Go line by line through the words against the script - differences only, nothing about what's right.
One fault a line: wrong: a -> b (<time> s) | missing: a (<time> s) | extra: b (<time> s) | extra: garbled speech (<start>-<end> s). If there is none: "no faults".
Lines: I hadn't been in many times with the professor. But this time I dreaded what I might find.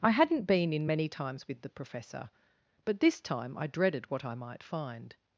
no faults